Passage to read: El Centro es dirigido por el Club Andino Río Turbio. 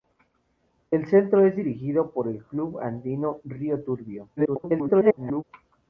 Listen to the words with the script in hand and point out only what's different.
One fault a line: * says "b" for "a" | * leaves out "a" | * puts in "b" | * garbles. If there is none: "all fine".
* garbles